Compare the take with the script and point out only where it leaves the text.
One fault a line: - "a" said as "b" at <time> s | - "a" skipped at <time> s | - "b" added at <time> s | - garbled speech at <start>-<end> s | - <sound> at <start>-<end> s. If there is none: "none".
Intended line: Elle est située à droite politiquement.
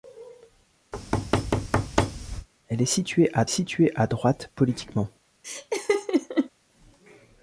- thud at 0.9-2.5 s
- "située à" added at 3.5 s
- laugh at 5.4-6.5 s